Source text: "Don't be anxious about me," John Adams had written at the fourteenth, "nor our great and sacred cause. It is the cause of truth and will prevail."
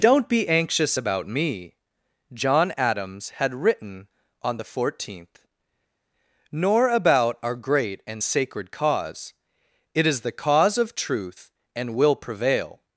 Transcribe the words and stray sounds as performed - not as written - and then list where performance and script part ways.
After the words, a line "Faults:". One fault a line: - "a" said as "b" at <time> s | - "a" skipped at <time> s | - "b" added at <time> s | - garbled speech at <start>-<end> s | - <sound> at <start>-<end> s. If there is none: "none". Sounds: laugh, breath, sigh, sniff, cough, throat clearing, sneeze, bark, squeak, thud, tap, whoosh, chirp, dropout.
"Don't be anxious about me," John Adams had written on the fourteenth, "nor about our great and sacred cause. It is the cause of truth and will prevail."
Faults:
- "at" said as "on" at 4.4 s
- "about" added at 6.9 s